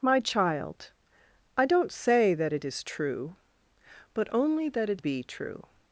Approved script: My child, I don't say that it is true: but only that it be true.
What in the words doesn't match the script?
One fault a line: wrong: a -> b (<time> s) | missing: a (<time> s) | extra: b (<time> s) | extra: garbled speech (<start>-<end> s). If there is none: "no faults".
no faults